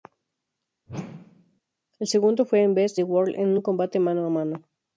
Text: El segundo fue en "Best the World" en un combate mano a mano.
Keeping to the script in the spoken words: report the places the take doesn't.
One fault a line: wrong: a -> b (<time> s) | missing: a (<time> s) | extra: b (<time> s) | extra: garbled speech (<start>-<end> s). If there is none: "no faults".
no faults